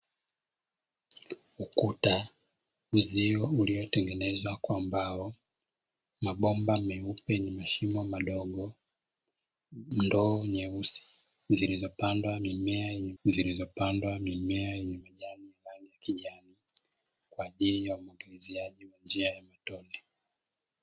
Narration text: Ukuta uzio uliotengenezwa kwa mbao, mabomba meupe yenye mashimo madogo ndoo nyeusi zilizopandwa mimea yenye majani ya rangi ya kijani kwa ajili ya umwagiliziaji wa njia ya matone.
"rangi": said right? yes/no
yes